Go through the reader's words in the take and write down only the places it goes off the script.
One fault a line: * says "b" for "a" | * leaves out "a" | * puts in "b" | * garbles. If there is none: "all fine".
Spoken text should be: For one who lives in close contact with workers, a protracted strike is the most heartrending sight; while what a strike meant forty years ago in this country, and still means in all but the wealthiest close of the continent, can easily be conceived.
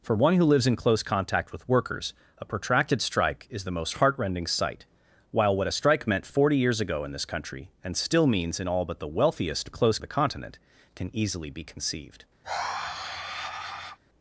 all fine